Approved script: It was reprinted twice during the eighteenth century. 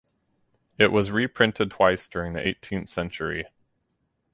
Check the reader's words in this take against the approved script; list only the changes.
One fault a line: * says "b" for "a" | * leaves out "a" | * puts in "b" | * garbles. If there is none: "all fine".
all fine